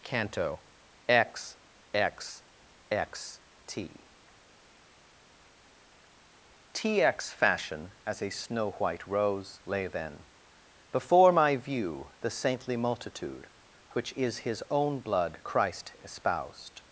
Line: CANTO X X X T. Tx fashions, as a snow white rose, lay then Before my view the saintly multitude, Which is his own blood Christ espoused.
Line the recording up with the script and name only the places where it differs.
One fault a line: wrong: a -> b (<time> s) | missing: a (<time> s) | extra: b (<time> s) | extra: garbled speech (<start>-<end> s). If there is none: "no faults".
wrong: fashions -> fashion (7.3 s)